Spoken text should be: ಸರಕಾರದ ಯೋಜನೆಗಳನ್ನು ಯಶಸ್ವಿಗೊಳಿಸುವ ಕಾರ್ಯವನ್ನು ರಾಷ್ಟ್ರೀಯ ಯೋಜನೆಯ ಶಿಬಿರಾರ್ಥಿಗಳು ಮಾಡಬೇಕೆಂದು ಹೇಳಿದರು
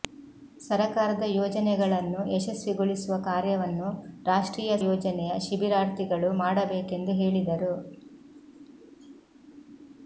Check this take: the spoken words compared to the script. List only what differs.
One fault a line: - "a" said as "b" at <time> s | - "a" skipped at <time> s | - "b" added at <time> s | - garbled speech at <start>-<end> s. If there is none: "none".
none